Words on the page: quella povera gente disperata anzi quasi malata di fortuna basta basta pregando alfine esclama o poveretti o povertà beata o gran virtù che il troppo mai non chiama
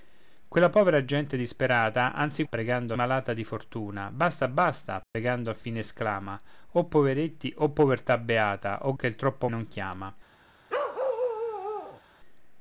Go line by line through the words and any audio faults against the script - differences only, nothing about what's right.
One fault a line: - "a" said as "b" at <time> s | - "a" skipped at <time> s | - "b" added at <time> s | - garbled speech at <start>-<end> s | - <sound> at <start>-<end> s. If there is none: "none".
- "quasi" said as "pregando" at 2.4 s
- dropout at 5.0-5.1 s
- "gran virtù" skipped at 8.9 s
- "mai" skipped at 9.5 s
- bark at 10.7-12.0 s